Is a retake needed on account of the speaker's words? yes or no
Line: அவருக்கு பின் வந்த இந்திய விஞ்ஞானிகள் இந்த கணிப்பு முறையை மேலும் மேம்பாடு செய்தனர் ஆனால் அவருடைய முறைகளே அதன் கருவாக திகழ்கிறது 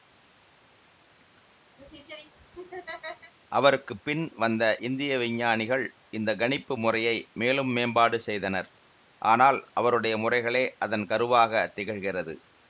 no